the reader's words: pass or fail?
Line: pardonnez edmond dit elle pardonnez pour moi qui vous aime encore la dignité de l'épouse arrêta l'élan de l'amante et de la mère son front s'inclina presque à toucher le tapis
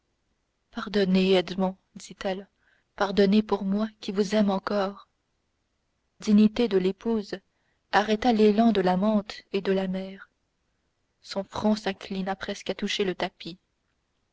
fail